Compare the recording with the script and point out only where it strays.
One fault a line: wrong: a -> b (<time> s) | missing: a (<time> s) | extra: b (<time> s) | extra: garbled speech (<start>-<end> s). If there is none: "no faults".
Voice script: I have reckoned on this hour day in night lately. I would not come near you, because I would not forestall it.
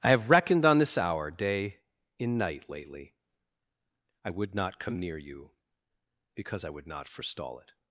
no faults